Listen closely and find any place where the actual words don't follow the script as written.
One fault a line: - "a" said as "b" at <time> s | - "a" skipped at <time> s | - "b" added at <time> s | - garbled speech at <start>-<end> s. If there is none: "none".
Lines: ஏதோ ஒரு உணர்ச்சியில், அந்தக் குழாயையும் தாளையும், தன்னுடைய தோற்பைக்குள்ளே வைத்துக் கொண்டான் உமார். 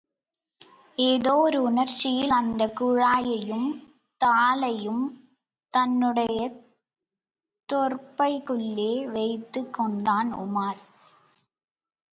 none